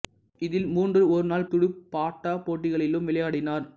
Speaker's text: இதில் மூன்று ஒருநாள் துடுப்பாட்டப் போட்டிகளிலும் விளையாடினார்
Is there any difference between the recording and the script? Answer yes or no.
no